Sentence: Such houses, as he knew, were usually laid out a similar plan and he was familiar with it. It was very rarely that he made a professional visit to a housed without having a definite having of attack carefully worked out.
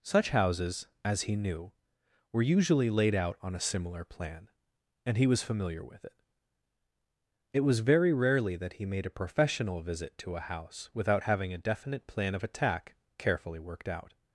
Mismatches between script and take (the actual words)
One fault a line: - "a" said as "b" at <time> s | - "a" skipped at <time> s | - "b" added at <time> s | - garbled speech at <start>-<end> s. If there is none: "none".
- "on" added at 3.4 s
- "housed" said as "house" at 10.4 s
- "having" said as "plan" at 12.1 s